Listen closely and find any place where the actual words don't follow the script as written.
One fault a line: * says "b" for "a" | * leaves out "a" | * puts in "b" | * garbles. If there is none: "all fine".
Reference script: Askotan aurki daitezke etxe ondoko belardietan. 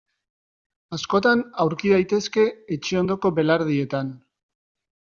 all fine